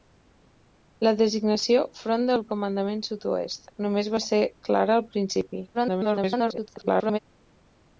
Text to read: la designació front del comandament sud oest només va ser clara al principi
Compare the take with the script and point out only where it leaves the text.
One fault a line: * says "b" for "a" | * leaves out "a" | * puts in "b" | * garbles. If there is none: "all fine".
* garbles